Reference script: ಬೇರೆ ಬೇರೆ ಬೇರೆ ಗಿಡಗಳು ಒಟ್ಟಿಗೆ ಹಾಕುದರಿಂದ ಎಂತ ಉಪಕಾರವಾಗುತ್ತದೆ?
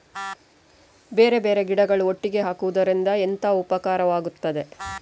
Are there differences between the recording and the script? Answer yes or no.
yes